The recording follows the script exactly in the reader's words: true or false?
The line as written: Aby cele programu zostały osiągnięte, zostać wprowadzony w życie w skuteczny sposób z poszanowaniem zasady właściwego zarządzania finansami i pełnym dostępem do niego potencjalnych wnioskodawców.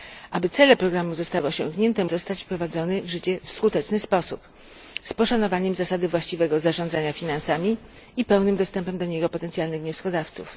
true